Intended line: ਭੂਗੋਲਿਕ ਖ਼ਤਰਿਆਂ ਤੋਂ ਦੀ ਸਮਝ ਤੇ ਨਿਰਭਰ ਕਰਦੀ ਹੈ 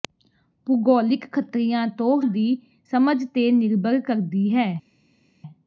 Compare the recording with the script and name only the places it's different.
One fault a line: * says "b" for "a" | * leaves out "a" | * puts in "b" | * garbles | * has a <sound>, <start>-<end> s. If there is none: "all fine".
all fine